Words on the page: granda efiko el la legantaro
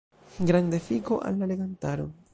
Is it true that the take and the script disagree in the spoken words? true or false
true